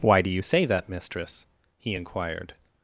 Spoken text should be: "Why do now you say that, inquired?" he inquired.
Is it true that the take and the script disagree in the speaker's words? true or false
true